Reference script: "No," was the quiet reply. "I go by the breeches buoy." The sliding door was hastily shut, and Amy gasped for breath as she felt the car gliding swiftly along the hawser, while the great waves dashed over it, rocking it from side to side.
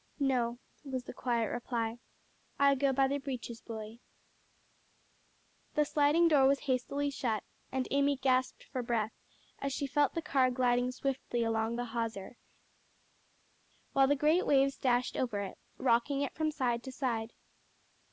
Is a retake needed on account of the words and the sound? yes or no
no